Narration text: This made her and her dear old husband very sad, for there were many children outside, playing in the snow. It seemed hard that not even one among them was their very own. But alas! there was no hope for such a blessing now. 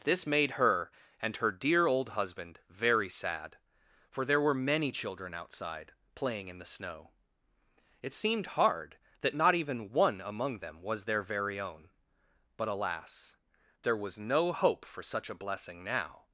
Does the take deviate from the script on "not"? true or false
false